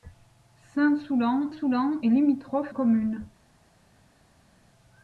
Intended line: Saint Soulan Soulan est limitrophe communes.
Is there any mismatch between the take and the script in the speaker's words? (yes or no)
no